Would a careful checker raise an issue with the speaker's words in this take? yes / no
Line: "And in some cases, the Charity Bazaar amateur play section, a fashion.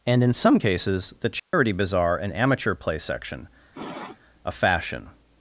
yes